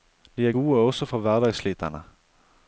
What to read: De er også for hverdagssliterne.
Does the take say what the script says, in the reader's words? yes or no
no